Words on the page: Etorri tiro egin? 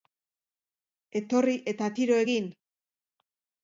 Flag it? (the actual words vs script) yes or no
yes